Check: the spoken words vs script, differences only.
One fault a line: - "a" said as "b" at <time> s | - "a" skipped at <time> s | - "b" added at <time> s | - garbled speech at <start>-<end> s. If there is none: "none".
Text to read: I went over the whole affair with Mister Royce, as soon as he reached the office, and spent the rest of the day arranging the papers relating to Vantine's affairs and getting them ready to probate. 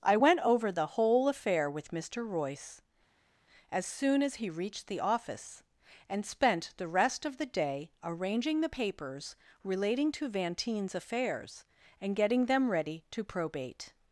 none